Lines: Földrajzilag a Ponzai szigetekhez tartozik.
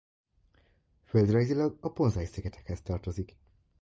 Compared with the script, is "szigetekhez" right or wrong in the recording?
right